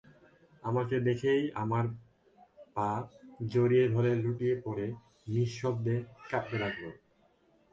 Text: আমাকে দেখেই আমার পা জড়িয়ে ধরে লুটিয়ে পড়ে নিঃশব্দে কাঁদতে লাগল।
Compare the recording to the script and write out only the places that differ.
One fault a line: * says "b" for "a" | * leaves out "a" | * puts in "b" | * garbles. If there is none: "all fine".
all fine